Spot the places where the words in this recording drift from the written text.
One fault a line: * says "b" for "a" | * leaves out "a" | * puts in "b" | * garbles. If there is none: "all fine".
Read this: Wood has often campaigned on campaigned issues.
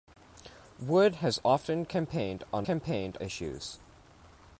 all fine